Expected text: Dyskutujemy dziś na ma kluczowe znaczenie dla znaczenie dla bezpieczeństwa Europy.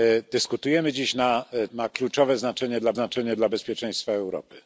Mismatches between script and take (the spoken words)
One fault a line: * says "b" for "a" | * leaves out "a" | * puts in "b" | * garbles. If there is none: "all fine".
all fine